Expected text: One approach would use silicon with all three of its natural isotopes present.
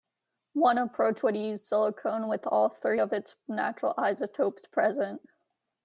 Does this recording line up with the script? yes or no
yes